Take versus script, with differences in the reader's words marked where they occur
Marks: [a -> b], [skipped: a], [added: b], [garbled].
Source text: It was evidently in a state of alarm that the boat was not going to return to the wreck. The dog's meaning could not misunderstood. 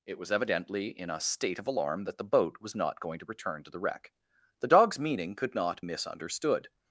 It was evidently in a state of alarm that the boat was not going to return to the wreck. The dog's meaning could not misunderstood.